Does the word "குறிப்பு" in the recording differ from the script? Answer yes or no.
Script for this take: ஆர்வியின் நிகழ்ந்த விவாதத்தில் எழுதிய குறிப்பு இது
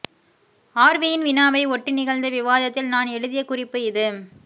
no